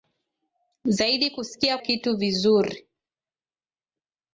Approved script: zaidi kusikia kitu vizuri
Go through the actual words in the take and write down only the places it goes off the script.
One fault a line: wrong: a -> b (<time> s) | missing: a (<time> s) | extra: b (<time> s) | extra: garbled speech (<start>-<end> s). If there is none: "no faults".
no faults